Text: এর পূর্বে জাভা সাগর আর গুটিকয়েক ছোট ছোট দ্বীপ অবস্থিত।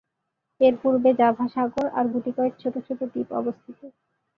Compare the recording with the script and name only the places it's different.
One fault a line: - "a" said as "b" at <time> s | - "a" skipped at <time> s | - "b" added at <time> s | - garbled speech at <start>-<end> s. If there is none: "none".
none